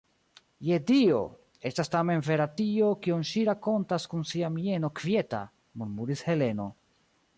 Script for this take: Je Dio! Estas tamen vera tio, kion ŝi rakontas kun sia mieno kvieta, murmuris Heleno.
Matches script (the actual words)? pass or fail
pass